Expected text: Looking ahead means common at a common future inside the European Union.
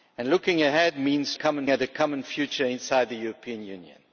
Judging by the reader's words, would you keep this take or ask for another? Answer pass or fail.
pass